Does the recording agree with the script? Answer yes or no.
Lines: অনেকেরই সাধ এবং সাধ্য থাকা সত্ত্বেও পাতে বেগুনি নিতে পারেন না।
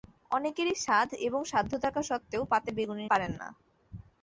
no